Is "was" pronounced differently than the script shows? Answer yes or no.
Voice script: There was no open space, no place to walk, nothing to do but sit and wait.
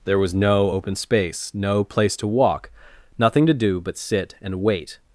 no